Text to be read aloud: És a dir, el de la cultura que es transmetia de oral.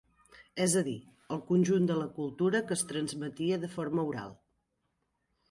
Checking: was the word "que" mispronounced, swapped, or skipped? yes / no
no